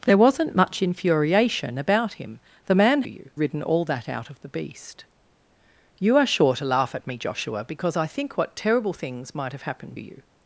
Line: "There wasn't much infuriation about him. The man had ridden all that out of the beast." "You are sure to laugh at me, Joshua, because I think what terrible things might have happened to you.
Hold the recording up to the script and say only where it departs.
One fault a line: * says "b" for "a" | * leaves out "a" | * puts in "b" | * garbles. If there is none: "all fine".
* says "you" for "had"
* leaves out "to"